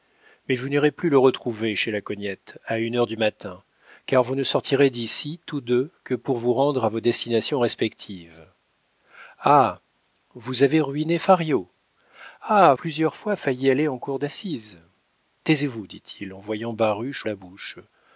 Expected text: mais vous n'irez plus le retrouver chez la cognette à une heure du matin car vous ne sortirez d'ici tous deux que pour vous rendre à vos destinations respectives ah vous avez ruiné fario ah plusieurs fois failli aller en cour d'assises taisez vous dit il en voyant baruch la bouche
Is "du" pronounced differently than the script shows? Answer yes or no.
no